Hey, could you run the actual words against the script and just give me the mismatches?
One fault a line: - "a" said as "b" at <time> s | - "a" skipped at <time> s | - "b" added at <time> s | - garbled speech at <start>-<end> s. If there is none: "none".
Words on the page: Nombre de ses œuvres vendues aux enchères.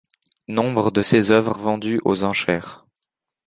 none